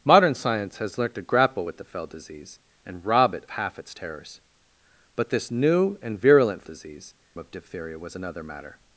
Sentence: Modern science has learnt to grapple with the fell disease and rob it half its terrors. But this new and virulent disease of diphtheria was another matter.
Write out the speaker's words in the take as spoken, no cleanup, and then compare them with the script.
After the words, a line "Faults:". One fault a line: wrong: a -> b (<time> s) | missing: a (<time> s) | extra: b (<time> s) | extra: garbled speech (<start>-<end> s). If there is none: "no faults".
Modern science has learnt to grapple with the fell disease and rob it half its terrors. But this new and virulent disease of diphtheria was another matter.
Faults:
no faults